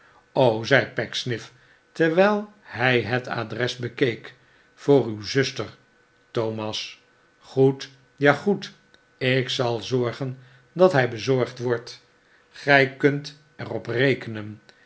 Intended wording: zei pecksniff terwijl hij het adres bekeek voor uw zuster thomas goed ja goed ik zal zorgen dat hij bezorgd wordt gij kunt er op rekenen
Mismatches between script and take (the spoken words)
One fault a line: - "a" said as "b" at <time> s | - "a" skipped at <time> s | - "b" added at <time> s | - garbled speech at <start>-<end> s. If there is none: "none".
none